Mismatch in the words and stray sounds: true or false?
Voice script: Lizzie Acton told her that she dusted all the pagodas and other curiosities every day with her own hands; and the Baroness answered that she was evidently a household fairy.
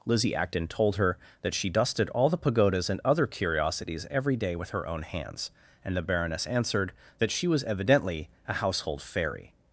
false